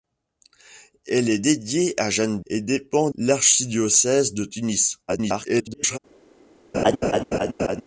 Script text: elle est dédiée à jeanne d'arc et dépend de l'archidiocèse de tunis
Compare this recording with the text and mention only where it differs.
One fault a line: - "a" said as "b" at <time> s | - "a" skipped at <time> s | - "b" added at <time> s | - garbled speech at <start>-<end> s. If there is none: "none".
- "d'arc" skipped at 2.4 s
- "de" skipped at 3.1 s
- garbled speech at 5.1-6.0 s